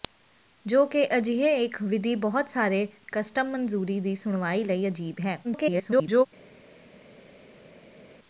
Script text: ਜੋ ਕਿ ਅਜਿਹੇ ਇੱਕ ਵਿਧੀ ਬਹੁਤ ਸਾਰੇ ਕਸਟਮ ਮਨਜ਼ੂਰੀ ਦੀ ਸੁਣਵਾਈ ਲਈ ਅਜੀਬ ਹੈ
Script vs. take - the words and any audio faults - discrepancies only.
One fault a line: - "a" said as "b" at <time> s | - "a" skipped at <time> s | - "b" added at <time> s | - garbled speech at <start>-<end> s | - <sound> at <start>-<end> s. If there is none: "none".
- garbled speech at 5.4-6.3 s